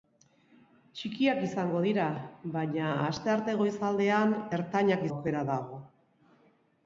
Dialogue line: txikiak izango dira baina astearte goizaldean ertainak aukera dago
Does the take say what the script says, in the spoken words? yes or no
yes